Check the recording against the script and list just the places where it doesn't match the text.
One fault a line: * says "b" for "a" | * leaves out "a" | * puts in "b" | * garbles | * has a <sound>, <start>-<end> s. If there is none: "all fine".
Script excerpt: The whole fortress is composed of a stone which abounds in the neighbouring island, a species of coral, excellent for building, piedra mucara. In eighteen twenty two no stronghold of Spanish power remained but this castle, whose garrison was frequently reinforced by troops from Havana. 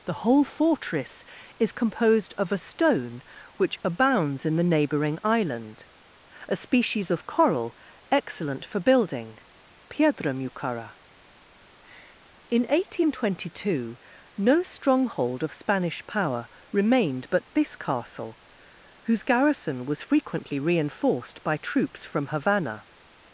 all fine